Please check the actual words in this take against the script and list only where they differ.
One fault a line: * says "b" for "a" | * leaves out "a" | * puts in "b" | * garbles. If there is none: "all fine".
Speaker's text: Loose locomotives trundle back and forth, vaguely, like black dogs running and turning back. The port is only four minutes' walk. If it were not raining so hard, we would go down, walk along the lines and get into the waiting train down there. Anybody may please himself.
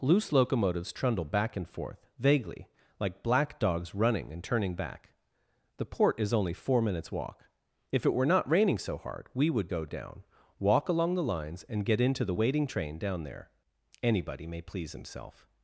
all fine